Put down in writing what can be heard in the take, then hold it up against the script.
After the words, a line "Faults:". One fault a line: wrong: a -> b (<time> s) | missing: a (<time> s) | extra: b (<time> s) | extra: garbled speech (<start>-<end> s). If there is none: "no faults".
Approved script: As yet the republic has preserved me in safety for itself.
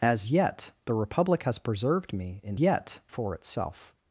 As yet the republic has preserved me in yet for itself.
Faults:
wrong: safety -> yet (2.6 s)